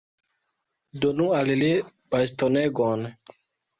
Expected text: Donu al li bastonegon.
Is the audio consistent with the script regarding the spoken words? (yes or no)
yes